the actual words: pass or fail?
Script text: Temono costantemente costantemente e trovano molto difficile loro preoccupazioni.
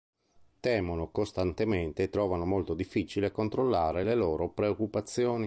fail